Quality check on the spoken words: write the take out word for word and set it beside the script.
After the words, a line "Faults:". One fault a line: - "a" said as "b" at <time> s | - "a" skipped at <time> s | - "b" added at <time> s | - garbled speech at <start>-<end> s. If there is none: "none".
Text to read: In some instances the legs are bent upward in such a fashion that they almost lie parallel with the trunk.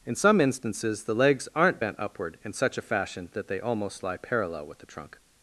In some instances the legs aren't bent upward in such a fashion that they almost lie parallel with the trunk.
Faults:
- "are" said as "aren't" at 1.6 s